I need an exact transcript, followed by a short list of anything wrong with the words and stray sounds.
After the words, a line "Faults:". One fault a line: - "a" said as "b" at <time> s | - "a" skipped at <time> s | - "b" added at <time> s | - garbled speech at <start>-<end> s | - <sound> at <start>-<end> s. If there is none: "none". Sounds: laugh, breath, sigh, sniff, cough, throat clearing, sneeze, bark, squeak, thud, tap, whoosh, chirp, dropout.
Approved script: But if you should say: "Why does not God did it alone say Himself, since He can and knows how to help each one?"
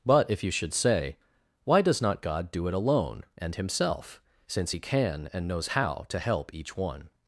But if you should say: "Why does not God do it alone and Himself, since He can and knows how to help each one?"
Faults:
- "did" said as "do" at 2.5 s
- "say" said as "and" at 3.4 s